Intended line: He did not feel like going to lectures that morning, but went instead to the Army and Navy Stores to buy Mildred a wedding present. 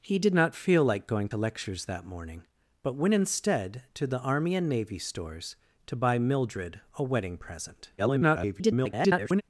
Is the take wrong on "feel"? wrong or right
right